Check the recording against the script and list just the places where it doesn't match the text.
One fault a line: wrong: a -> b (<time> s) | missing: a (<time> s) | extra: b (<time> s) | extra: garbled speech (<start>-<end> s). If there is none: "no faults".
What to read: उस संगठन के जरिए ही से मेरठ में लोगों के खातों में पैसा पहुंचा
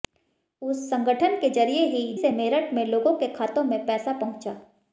no faults